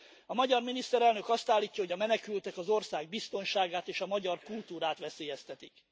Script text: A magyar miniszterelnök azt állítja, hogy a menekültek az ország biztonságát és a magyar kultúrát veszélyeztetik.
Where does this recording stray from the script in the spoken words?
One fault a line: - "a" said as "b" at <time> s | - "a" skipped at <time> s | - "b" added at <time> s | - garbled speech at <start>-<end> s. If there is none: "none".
none